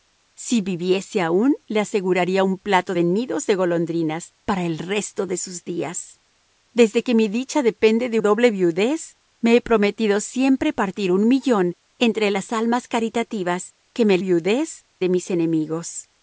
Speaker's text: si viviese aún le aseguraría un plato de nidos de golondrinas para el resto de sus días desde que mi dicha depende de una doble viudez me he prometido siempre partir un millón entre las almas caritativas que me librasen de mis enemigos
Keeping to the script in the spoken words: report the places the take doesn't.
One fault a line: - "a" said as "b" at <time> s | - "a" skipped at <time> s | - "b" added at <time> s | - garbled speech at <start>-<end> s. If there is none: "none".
- "una" skipped at 8.2 s
- "librasen" said as "viudez" at 14.2 s